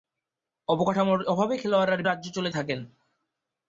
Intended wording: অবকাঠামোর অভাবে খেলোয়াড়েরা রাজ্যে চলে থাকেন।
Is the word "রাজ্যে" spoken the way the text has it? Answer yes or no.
yes